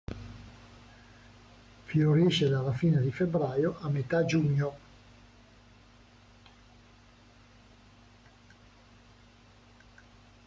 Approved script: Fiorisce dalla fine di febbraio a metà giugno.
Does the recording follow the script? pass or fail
pass